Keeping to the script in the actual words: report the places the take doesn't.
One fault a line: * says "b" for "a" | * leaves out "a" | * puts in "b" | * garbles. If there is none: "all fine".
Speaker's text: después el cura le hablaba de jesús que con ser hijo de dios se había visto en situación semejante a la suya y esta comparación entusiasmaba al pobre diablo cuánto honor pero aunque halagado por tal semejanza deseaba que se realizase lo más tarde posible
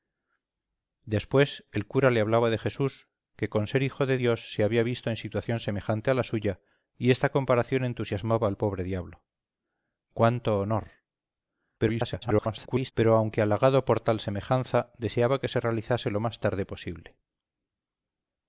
* garbles